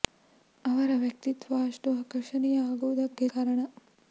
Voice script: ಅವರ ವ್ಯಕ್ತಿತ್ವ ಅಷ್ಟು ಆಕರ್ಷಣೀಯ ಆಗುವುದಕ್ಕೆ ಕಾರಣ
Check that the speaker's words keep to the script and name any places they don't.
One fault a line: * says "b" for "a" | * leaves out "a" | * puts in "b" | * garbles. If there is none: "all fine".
all fine